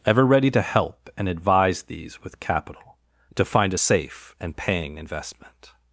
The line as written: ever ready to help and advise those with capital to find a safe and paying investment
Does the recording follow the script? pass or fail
fail